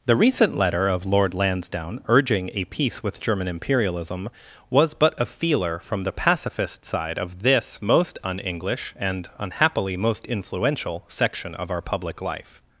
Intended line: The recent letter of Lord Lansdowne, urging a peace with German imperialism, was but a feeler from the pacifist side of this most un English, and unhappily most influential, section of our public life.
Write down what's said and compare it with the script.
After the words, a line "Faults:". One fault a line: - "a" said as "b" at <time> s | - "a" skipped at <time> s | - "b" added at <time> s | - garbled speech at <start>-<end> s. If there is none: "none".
The recent letter of Lord Lansdowne, urging a peace with German imperialism, was but a feeler from the pacifist side of this most un English, and unhappily most influential, section of our public life.
Faults:
none